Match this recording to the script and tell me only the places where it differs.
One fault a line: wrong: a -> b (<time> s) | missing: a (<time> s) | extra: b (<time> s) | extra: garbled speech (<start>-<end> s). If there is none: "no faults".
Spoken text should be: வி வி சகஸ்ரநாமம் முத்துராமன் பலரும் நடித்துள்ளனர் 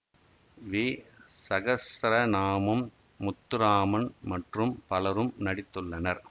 missing: வி (0.8 s)
extra: மற்றும் (4.2 s)